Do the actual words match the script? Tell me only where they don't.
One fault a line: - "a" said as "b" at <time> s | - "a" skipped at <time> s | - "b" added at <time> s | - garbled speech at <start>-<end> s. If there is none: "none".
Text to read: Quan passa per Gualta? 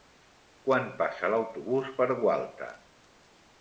- "l'autobús" added at 1.4 s